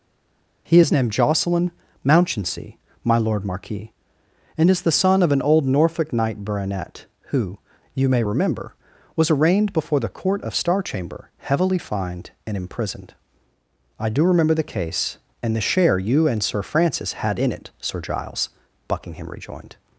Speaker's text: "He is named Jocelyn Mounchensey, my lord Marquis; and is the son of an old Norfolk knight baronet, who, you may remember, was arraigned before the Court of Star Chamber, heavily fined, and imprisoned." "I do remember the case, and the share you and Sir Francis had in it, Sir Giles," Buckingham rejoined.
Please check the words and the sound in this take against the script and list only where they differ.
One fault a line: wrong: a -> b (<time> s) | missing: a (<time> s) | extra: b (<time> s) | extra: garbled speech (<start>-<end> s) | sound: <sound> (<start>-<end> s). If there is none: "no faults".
no faults